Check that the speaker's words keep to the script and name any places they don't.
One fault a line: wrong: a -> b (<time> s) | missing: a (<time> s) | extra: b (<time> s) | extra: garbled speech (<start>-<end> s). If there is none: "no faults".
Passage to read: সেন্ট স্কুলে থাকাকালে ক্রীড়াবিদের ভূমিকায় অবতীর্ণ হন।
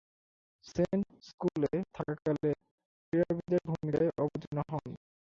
no faults